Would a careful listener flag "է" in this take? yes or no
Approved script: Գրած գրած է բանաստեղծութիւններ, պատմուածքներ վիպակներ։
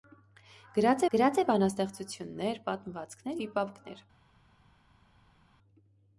no